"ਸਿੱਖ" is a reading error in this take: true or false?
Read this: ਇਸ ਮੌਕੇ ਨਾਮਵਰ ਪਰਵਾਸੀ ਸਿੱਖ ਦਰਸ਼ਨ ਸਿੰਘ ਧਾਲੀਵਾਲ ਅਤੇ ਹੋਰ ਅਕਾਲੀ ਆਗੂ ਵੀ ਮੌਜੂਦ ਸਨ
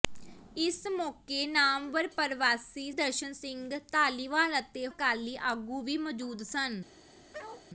true